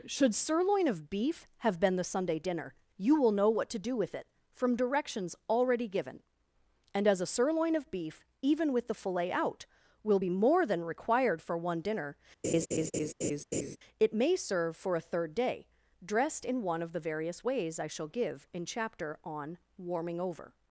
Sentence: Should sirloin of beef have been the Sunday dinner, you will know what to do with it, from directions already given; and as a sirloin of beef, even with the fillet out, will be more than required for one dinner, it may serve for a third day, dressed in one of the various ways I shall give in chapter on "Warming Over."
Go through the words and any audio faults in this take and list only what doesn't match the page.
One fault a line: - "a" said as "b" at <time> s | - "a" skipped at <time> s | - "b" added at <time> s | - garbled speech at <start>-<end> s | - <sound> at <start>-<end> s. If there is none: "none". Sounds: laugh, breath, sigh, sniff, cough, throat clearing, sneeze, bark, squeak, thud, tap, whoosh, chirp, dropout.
- laugh at 12.4-13.8 s